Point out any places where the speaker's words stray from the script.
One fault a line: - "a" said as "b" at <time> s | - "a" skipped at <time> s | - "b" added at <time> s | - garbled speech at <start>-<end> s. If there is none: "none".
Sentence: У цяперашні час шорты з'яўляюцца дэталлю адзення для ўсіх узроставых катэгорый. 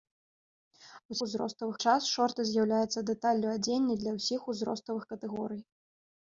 - "цяперашні" said as "узроставых" at 1.3 s